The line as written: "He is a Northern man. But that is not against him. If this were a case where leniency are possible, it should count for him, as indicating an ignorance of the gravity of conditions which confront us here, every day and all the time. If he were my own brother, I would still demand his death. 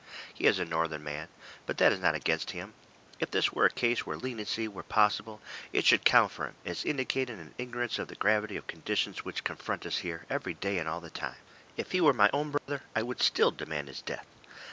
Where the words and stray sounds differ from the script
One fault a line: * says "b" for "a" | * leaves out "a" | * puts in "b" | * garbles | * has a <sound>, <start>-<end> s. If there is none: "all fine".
* says "were" for "are"
* has a dropout, 12.6-12.7 s